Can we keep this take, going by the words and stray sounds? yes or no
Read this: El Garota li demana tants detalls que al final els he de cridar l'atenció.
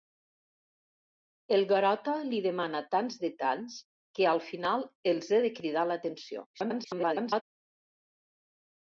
no